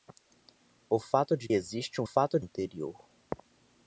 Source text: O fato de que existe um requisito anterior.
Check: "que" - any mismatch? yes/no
yes